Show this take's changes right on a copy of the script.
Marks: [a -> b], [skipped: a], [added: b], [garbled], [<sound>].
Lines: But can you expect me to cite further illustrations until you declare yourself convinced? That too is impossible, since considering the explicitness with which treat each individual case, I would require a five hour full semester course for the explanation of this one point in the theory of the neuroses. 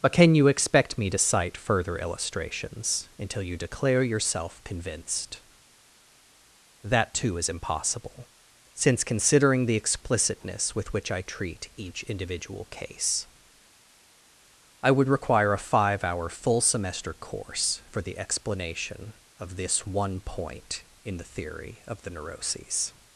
But can you expect me to cite further illustrations until you declare yourself convinced? That too is impossible, since considering the explicitness with which [added: I] treat each individual case, I would require a five hour full semester course for the explanation of this one point in the theory of the neuroses.